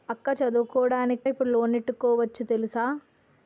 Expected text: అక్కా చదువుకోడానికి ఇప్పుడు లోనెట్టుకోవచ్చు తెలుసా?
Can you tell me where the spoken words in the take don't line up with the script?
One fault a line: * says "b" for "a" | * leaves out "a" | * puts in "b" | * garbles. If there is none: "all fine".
all fine